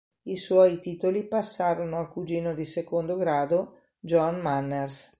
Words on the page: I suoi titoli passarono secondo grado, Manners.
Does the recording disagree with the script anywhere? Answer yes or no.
yes